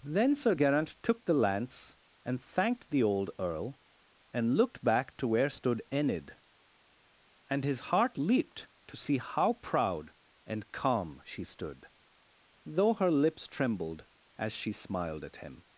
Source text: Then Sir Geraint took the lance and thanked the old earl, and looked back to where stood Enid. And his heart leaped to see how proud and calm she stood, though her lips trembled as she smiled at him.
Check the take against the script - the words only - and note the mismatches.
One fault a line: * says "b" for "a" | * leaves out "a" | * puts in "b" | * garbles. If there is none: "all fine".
all fine